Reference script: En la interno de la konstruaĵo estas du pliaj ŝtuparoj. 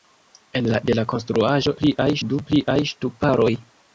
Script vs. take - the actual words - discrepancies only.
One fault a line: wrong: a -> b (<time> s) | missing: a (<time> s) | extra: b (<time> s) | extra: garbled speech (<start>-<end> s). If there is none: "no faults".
missing: interno (0.8 s)
wrong: estas -> pliaj (1.8 s)